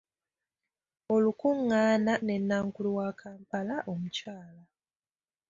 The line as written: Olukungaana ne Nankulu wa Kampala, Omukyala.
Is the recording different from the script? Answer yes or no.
no